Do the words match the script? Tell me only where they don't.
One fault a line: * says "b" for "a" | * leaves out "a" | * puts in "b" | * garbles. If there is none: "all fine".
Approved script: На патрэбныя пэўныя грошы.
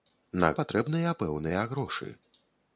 all fine